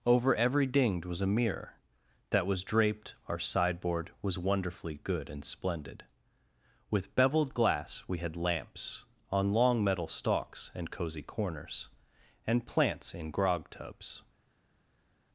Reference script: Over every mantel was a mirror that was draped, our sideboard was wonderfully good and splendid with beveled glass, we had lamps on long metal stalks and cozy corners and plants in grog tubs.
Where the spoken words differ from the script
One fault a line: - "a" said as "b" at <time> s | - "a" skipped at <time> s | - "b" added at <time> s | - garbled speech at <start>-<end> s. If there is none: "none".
- "mantel" said as "dinged" at 0.7 s